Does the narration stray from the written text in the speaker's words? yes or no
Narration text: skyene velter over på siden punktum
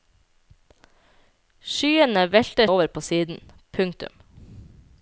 no